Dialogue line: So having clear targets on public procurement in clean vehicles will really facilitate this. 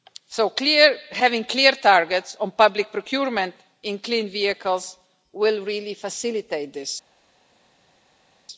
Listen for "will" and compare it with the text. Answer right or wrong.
right